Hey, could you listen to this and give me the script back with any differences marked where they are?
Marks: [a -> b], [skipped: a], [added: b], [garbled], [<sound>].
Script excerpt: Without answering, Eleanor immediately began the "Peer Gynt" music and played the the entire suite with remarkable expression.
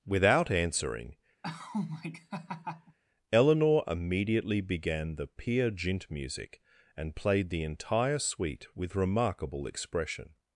Without answering, [laugh] Eleanor immediately began the "Peer Gynt" music and played the [skipped: the] entire suite with remarkable expression.